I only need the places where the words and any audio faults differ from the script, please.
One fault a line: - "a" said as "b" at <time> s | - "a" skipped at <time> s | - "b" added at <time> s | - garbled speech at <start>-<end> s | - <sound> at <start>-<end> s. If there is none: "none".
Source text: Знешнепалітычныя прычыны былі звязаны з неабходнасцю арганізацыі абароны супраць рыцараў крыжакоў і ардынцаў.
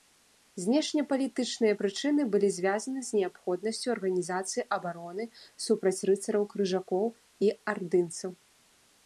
none